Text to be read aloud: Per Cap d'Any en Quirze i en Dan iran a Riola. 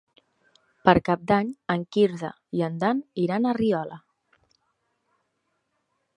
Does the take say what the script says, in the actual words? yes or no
yes